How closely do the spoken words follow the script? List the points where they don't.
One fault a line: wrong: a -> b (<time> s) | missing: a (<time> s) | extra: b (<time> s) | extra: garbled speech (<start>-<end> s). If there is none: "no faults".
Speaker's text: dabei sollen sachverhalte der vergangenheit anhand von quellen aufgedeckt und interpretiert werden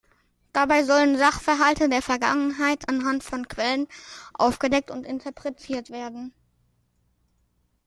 no faults